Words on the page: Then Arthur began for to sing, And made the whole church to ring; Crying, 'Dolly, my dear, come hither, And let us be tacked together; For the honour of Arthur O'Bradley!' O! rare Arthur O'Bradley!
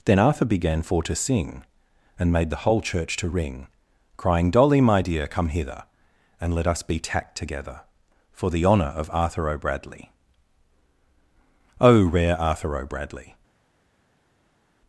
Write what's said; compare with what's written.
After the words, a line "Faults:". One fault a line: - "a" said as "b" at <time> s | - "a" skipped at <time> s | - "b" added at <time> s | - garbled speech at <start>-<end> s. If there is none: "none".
Then Arthur began for to sing, And made the whole church to ring; Crying, 'Dolly, my dear, come hither, And let us be tacked together; For the honour of Arthur O'Bradley!' O! rare Arthur O'Bradley!
Faults:
none